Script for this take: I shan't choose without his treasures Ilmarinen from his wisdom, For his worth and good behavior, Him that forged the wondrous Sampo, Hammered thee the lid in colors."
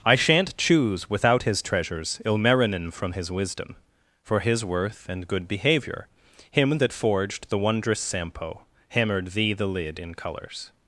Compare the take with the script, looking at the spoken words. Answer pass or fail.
pass